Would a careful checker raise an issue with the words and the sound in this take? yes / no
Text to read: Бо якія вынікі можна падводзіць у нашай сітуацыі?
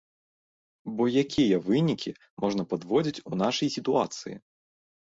no